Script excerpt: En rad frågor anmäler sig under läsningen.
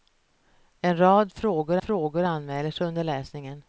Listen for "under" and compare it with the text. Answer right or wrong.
right